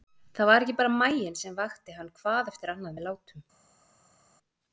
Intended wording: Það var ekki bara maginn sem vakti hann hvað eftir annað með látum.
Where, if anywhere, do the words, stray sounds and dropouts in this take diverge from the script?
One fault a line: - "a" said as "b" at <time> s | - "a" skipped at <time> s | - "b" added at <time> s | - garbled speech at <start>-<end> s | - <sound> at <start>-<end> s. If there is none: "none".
none